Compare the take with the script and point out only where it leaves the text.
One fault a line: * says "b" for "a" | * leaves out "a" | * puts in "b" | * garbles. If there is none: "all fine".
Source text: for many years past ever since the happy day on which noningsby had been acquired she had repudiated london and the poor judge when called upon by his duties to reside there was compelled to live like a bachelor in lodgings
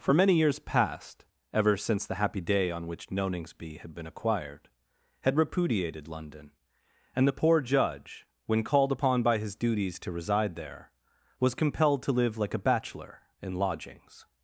* leaves out "she"